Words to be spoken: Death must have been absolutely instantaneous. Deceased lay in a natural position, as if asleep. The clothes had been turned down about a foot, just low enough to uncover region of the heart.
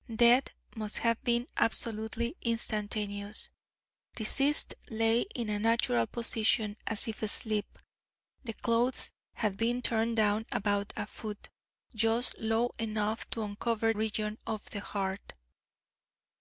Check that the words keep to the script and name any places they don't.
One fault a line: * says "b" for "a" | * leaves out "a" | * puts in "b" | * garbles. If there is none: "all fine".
all fine